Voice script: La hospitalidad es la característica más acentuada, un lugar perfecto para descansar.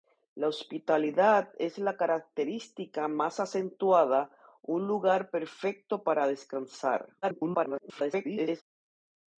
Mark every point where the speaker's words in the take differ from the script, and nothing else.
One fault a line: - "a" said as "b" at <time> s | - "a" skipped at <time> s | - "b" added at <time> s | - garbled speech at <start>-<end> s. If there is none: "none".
- garbled speech at 7.2-8.6 s